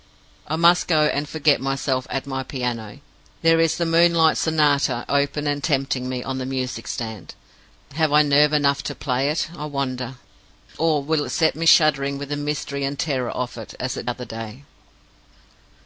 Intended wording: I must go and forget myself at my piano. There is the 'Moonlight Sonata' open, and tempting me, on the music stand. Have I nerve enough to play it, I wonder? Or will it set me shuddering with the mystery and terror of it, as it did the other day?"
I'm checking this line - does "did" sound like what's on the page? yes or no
no